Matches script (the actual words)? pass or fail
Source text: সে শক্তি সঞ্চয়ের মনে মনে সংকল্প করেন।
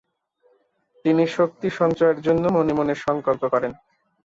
fail